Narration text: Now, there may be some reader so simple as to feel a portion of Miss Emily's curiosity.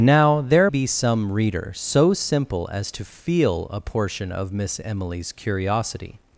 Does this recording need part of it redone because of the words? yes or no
yes